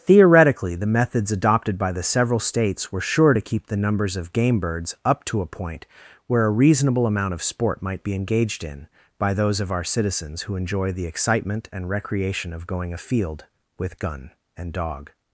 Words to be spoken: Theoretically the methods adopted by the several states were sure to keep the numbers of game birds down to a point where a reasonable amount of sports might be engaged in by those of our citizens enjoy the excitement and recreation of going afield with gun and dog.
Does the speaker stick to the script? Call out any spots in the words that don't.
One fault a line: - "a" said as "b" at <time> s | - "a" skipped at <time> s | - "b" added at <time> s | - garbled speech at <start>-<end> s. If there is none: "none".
- "down" said as "up" at 5.0 s
- "sports" said as "sport" at 7.4 s
- "who" added at 10.4 s